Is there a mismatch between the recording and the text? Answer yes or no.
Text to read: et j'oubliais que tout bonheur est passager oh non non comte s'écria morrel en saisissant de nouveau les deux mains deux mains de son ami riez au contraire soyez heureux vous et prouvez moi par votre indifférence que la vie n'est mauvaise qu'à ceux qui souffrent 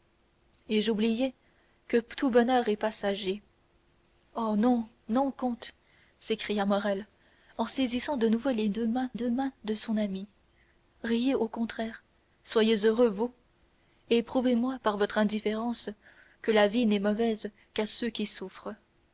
no